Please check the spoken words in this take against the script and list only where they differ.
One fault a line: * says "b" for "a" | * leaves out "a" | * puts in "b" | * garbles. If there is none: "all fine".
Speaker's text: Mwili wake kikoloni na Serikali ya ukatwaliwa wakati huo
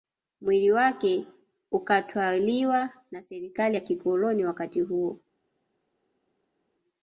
* says "ukatwaliwa" for "kikoloni"
* says "kikoloni" for "ukatwaliwa"